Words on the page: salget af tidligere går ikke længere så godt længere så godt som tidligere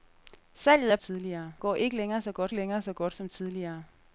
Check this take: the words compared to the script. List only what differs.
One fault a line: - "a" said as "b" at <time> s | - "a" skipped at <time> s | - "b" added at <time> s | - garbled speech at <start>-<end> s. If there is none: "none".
none